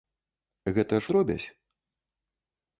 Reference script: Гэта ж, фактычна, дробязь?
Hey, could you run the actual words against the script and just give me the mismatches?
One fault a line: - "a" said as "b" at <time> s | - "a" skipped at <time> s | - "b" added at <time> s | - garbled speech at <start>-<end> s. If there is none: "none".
- "фактычна" skipped at 1.1 s